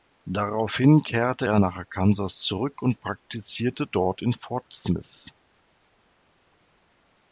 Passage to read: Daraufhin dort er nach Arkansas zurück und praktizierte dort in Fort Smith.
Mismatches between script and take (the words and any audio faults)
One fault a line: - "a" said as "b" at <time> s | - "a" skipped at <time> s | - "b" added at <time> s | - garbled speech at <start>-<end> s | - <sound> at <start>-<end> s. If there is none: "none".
- "dort" said as "kehrte" at 1.0 s